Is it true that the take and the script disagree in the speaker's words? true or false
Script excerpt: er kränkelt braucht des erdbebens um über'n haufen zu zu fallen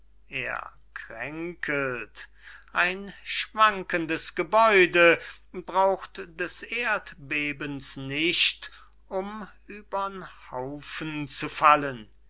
true